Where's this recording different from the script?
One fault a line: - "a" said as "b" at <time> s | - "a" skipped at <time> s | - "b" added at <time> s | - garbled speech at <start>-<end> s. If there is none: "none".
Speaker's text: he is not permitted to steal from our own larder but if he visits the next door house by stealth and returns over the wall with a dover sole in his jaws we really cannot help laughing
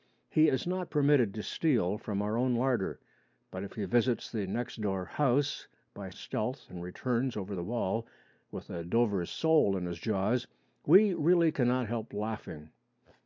none